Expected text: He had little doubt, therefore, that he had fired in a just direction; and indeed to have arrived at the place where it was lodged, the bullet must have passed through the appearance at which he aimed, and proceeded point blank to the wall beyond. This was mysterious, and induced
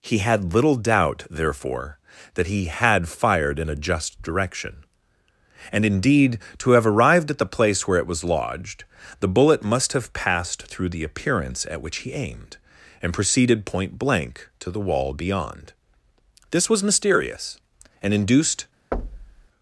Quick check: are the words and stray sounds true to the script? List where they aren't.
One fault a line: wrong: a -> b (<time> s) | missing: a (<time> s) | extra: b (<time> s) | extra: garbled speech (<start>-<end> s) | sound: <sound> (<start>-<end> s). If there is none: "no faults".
sound: thud (18.9-19.5 s)